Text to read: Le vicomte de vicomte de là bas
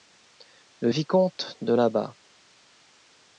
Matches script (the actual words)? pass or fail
fail